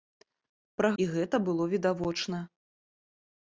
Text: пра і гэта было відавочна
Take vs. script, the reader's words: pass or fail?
pass